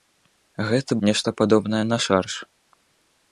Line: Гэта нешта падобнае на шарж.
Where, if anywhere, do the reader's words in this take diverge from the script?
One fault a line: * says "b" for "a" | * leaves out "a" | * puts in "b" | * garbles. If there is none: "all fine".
all fine